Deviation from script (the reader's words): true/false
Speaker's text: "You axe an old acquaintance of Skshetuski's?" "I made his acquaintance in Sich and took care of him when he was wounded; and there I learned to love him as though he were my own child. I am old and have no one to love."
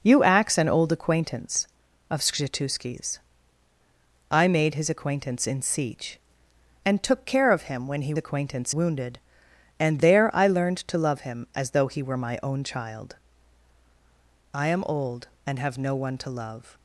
true